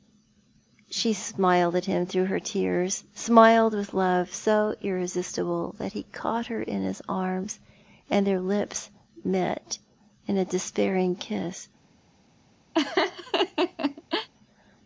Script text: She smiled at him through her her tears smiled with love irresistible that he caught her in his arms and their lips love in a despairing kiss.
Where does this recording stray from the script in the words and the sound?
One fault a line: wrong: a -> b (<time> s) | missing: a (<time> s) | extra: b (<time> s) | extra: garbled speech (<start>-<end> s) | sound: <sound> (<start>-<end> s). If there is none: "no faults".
missing: her (2.4 s)
extra: so (4.3 s)
wrong: love -> met (9.2 s)
sound: laugh (12.7-14.3 s)